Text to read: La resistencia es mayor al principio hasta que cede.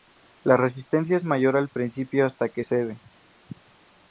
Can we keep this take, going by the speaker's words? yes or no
yes